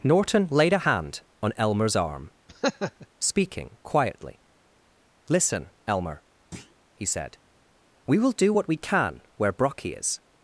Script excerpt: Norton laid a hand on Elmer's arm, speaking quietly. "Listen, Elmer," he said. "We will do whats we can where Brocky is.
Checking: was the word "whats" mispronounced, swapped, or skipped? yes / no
yes